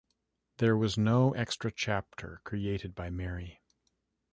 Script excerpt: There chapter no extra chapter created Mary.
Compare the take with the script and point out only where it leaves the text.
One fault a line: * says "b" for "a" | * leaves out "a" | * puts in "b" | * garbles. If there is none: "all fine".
* says "was" for "chapter"
* puts in "by"